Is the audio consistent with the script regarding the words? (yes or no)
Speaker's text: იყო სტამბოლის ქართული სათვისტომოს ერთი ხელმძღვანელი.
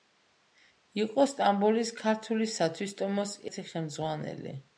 yes